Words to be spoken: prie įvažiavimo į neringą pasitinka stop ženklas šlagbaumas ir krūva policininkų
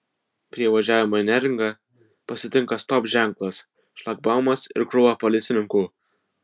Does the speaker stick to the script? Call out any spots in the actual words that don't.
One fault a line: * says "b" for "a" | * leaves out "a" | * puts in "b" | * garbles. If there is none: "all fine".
all fine